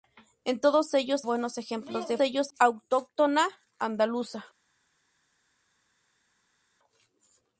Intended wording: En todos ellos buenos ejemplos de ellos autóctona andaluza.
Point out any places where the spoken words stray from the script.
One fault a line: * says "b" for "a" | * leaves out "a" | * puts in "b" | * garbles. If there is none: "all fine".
all fine